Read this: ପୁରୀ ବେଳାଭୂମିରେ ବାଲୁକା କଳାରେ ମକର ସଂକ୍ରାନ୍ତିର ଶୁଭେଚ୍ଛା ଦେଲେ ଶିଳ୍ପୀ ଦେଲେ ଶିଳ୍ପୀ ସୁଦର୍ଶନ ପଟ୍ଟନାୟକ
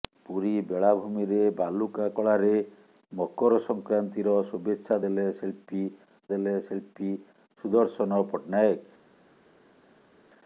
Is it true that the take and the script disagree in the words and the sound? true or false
false